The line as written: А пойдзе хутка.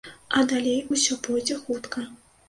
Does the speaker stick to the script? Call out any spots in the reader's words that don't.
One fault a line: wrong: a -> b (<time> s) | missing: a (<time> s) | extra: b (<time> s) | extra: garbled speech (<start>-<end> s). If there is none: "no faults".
extra: далей усё (0.5 s)